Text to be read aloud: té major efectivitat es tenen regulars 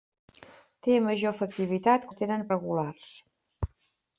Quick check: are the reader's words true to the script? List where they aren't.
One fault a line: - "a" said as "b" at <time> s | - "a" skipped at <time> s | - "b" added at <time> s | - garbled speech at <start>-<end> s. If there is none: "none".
none